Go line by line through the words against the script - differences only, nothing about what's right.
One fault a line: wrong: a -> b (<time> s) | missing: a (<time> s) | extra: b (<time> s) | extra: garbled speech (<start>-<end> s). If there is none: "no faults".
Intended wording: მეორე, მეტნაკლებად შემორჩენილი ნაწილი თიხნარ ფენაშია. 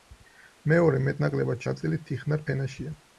missing: შემორჩენილი (1.7 s)